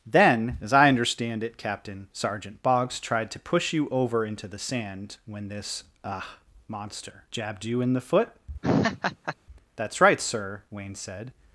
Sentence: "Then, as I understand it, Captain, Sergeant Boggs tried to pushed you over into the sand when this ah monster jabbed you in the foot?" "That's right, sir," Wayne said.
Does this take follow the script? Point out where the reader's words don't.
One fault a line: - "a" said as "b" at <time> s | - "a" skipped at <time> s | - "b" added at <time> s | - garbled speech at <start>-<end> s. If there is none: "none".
- "pushed" said as "push" at 3.4 s